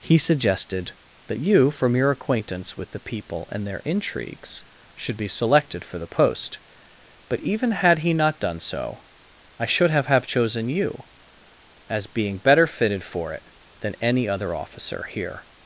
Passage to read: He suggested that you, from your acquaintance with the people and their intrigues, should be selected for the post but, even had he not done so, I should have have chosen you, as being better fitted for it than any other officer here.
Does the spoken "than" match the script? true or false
true